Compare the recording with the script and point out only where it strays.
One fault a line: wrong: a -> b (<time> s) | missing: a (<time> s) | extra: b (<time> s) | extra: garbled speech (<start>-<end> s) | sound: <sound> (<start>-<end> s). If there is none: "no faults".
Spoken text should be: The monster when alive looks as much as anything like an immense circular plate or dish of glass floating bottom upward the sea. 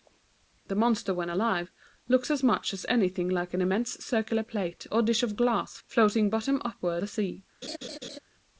sound: laugh (7.6-8.2 s)